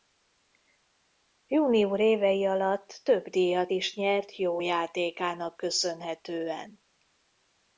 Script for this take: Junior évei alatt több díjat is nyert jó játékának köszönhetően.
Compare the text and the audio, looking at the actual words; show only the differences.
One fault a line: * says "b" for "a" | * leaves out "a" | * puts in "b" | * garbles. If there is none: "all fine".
all fine